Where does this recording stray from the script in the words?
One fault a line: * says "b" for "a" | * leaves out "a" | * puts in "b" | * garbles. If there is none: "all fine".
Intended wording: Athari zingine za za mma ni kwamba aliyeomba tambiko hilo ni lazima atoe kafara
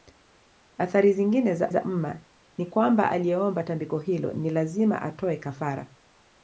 all fine